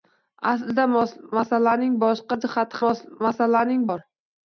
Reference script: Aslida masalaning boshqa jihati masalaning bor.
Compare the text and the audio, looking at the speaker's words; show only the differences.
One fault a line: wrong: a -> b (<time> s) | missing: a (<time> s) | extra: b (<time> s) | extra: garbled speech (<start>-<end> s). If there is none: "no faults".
no faults